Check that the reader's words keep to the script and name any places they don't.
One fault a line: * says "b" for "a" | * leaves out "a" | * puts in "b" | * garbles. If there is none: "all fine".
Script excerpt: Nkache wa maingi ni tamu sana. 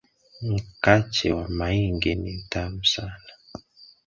all fine